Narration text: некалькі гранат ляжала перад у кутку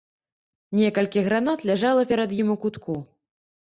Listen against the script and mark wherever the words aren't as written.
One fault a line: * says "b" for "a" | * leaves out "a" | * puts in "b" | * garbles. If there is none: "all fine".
* puts in "ім"